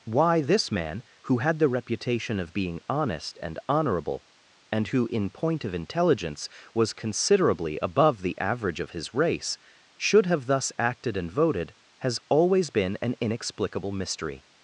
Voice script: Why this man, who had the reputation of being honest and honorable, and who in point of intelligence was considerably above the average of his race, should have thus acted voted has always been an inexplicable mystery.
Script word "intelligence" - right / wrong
right